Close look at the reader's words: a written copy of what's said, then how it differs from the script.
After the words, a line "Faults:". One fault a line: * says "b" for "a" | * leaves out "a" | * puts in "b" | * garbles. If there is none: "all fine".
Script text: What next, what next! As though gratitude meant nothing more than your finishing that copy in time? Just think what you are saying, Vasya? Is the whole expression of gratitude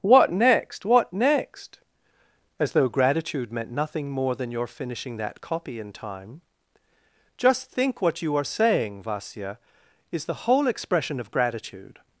What next, what next! As though gratitude meant nothing more than your finishing that copy in time? Just think what you are saying, Vasya? Is the whole expression of gratitude
Faults:
all fine